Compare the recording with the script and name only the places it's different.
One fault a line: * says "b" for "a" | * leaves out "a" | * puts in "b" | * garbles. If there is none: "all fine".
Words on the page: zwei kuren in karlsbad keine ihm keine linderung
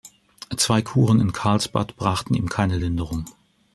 * says "brachten" for "keine"